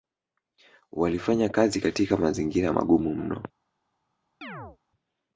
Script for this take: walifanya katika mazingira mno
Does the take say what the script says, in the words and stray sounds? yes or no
no